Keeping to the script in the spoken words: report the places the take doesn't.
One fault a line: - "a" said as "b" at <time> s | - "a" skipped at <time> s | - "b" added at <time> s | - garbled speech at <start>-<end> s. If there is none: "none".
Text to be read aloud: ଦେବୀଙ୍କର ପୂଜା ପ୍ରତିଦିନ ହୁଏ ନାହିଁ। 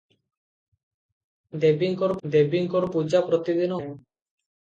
- "ଦେବୀଙ୍କର" added at 2.2 s
- "ହୁଏ" skipped at 3.8 s